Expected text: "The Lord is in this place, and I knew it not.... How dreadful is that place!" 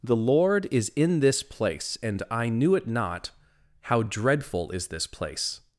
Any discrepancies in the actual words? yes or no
yes